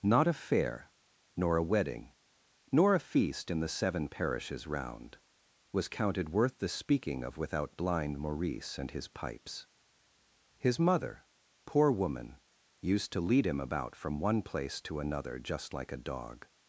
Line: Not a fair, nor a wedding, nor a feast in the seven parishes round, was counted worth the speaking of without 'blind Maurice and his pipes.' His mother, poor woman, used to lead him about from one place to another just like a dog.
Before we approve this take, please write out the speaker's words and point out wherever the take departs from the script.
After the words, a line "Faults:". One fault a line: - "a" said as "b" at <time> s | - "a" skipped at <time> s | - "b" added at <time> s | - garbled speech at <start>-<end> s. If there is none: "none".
Not a fair, nor a wedding, nor a feast in the seven parishes round, was counted worth the speaking of without 'blind Maurice and his pipes.' His mother, poor woman, used to lead him about from one place to another just like a dog.
Faults:
none